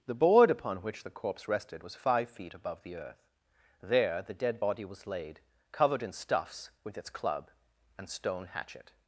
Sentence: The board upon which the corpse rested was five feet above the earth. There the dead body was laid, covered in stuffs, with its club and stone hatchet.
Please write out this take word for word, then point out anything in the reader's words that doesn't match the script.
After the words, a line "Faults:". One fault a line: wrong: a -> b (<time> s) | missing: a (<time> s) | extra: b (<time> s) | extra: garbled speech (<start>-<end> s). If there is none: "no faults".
The board upon which the corpse rested was five feet above the earth. There the dead body was laid, covered in stuffs, with its club and stone hatchet.
Faults:
no faults